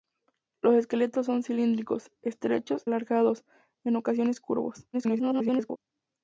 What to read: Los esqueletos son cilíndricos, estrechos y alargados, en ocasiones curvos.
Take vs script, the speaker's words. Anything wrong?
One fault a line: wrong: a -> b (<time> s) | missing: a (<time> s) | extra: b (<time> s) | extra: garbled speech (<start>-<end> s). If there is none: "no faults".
missing: y (2.8 s)
extra: garbled speech (4.9-5.8 s)